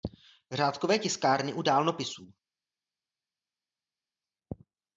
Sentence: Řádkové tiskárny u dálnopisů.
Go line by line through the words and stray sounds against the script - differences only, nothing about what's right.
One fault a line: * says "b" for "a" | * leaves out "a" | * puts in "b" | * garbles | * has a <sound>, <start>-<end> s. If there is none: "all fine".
all fine